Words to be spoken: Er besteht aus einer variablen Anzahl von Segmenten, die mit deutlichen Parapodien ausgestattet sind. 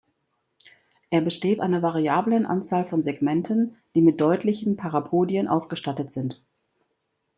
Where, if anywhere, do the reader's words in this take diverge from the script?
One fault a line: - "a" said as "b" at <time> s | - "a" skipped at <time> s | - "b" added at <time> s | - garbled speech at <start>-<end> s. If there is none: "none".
- "aus" skipped at 1.6 s